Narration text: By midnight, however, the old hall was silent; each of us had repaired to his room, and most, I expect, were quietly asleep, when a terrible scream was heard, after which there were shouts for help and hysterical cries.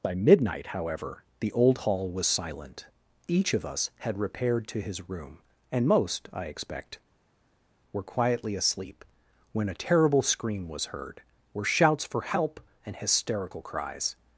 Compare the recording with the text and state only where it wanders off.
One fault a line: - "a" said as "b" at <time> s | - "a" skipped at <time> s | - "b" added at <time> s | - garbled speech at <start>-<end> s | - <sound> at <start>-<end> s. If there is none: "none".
- "after which there" skipped at 11.2 s